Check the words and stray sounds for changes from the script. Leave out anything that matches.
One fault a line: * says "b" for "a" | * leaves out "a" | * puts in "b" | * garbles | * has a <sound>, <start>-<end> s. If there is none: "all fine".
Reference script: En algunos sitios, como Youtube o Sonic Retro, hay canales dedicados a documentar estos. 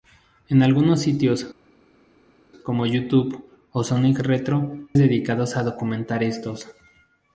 * leaves out "hay canales"